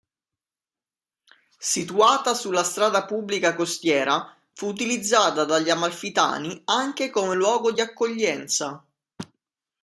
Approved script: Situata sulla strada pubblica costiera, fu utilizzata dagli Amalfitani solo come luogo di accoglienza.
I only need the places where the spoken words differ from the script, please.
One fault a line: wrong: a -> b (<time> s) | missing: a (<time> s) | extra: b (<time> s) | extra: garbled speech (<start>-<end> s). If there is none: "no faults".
wrong: solo -> anche (6.7 s)